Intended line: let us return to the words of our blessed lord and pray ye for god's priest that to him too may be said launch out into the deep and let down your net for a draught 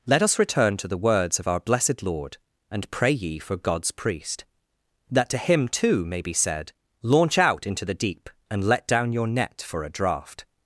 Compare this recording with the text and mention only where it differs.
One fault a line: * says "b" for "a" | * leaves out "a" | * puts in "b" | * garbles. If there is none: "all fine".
all fine